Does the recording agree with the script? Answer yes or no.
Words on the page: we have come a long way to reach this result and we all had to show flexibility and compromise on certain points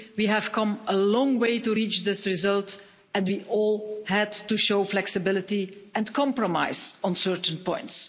yes